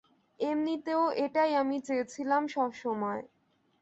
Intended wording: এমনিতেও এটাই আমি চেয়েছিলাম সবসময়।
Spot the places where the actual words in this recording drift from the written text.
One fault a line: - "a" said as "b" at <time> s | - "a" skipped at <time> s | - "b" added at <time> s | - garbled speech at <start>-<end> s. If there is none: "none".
none